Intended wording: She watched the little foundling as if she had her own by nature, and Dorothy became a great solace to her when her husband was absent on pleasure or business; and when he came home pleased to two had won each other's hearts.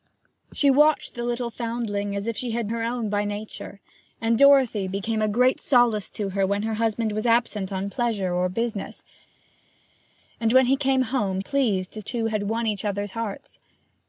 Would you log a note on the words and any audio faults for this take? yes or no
no